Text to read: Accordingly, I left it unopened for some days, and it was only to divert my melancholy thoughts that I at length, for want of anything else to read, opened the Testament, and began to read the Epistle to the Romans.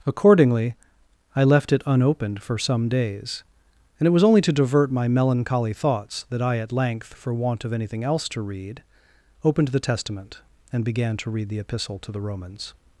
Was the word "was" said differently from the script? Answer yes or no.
no